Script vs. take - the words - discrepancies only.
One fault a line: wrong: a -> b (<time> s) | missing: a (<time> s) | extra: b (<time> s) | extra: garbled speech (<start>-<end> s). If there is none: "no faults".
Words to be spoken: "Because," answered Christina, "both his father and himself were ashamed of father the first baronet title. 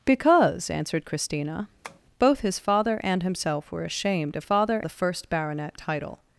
no faults